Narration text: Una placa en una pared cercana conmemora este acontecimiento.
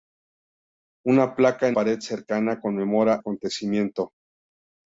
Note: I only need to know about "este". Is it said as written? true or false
false